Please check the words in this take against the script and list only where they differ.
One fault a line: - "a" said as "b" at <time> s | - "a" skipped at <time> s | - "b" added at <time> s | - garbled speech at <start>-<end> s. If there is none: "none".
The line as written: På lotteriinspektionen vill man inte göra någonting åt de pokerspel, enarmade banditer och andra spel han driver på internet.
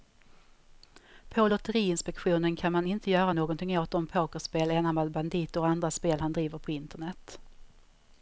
- "vill" said as "kan" at 2.6 s